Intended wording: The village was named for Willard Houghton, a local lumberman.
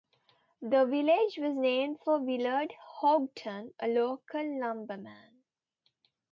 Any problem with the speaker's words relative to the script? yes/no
no